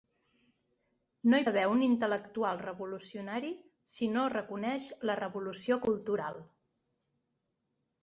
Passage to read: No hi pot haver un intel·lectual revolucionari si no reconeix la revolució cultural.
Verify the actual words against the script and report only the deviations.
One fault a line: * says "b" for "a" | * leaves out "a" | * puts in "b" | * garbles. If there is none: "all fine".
* leaves out "pot"